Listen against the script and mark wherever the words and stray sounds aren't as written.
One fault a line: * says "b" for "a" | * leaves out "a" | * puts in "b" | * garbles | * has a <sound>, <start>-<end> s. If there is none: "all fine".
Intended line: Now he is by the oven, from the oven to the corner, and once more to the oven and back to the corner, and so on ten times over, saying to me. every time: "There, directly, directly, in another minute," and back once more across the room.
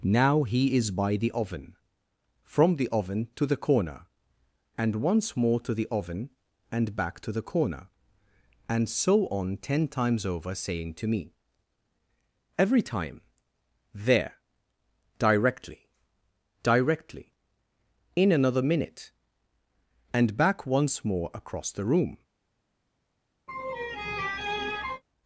* has a laugh, 23.5-25.0 s